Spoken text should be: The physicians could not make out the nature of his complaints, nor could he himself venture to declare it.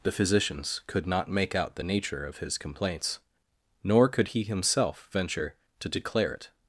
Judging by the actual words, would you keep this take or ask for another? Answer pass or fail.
pass